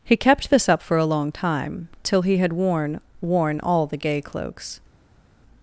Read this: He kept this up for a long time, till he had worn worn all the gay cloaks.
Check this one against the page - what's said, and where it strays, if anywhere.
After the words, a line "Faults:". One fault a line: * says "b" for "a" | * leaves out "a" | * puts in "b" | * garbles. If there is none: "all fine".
He kept this up for a long time, till he had worn worn all the gay cloaks.
Faults:
all fine